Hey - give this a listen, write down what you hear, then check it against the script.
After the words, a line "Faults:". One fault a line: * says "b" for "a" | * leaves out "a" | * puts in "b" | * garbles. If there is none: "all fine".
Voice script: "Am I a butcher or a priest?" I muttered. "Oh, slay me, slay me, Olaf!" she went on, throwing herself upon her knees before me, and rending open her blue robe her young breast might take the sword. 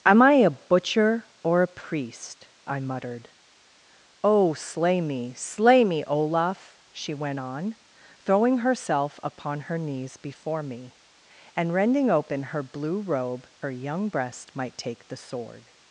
"Am I a butcher or a priest?" I muttered. "Oh, slay me, slay me, Olaf!" she went on, throwing herself upon her knees before me, and rending open her blue robe her young breast might take the sword.
Faults:
all fine